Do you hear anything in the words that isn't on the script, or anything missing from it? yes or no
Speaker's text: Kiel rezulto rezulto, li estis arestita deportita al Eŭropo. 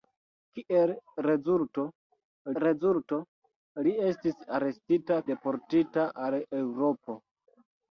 no